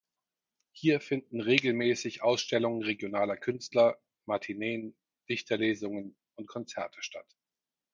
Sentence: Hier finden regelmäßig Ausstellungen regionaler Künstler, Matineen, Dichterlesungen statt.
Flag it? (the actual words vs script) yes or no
yes